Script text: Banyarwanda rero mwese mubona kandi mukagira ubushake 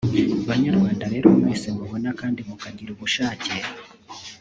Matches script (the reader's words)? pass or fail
pass